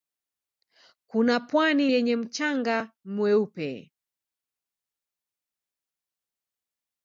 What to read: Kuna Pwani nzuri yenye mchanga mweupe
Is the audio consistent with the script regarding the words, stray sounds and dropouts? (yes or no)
no